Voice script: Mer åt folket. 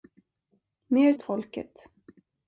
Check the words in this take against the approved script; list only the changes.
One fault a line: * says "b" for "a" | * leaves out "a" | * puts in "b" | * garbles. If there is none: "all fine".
all fine